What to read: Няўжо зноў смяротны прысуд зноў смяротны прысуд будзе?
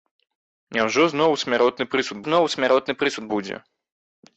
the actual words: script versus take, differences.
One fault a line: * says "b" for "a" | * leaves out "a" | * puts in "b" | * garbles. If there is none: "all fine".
all fine